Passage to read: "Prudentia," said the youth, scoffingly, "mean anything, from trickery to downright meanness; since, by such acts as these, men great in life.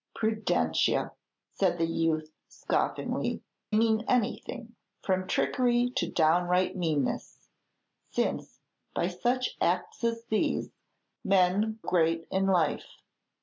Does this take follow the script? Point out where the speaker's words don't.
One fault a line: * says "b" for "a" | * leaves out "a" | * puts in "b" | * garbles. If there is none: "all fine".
all fine